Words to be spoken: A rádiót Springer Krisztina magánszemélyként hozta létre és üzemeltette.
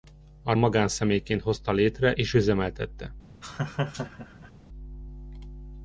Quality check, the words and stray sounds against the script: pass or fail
fail